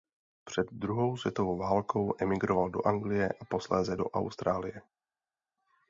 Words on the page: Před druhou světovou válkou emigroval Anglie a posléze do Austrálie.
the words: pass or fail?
fail